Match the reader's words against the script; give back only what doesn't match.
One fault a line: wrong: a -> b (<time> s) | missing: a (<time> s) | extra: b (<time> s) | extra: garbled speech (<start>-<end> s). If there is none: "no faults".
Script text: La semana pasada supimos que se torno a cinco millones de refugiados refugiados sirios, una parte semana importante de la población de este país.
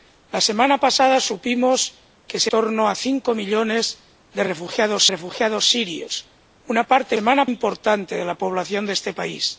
no faults